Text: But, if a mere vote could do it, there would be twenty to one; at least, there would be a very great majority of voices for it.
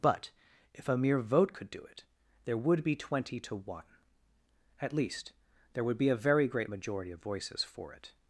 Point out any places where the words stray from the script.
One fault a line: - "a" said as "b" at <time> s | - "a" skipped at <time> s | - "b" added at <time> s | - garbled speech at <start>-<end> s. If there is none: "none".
none